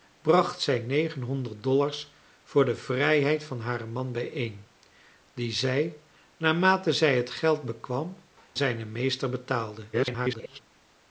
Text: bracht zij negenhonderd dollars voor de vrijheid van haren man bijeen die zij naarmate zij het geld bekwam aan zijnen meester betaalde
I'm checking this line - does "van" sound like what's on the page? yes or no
yes